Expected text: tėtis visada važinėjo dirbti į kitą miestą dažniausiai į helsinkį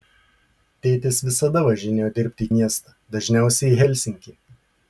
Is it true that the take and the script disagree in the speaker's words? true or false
true